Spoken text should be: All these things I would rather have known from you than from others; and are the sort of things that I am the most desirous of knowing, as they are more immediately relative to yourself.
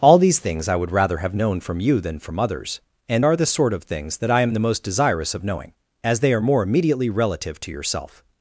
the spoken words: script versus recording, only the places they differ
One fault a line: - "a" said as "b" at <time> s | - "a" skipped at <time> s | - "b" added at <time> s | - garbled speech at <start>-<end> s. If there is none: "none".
none